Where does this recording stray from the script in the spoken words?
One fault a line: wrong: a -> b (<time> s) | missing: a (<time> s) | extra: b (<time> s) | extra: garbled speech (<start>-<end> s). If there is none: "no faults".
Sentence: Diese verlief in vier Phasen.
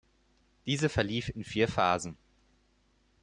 no faults